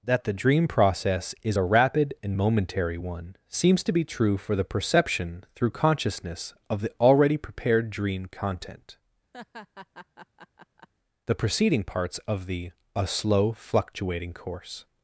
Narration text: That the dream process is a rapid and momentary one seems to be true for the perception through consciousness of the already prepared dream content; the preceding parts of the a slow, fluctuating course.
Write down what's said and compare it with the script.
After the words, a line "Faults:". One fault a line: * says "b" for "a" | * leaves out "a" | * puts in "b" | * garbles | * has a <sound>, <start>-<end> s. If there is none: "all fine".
That the dream process is a rapid and momentary one seems to be true for the perception through consciousness of the already prepared dream content; the preceding parts of the a slow, fluctuating course.
Faults:
* has a laugh, 9.3-10.9 s